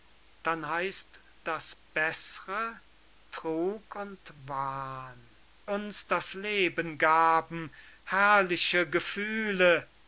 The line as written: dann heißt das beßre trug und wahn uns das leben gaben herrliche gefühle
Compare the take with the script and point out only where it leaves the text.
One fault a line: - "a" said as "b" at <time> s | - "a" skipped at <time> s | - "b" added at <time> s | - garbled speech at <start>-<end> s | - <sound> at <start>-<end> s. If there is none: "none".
none